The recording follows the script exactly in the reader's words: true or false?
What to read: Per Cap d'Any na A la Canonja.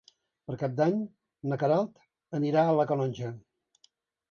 false